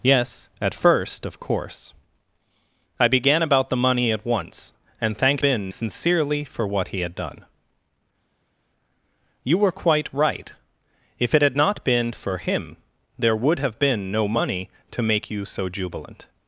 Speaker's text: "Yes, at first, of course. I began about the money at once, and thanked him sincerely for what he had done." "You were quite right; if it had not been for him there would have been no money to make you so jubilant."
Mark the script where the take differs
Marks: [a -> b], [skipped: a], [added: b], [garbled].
"Yes, at first, of course. I began about the money at once, and thanked [him -> been] sincerely for what he had done." "You were quite right; if it had not been for him there would have been no money to make you so jubilant."